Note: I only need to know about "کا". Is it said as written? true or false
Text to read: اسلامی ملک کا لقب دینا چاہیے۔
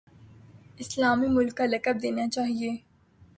true